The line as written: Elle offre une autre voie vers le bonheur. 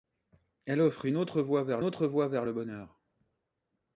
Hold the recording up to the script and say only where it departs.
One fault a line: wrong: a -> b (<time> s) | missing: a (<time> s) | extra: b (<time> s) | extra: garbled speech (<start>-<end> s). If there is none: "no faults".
extra: autre voie vers (1.8 s)